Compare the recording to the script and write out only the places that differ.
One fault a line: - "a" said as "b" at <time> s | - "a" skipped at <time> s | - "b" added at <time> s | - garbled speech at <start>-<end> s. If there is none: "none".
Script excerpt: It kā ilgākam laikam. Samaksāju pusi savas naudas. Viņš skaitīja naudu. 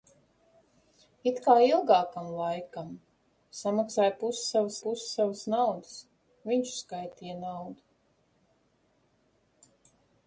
- "pusi savas" added at 4.9 s